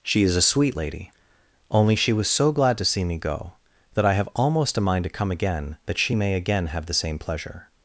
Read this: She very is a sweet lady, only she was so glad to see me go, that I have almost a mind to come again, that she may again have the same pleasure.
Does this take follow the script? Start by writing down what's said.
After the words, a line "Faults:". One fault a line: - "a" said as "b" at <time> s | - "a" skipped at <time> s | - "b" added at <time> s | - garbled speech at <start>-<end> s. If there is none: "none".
She is a sweet lady, only she was so glad to see me go, that I have almost a mind to come again, that she may again have the same pleasure.
Faults:
- "very" skipped at 0.2 s